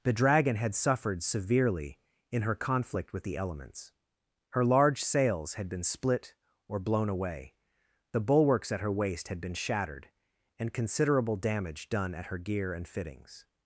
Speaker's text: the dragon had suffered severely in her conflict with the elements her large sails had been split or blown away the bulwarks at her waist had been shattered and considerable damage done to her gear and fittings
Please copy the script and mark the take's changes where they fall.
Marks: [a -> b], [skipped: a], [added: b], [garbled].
the dragon had suffered severely in her conflict with the elements her large sails had been split or blown away the bulwarks at her waist had been shattered and considerable damage done [to -> at] her gear and fittings